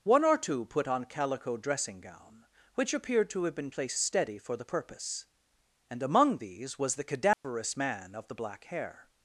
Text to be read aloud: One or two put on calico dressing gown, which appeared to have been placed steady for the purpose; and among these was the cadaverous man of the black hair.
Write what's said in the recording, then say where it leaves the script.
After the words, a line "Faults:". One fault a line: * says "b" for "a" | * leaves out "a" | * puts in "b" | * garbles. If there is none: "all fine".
One or two put on calico dressing gown, which appeared to have been placed steady for the purpose; and among these was the cadaverous man of the black hair.
Faults:
all fine